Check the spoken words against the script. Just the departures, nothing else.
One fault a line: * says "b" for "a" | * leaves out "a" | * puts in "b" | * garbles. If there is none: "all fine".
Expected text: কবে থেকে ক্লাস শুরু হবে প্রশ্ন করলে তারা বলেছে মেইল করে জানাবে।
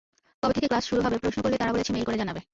all fine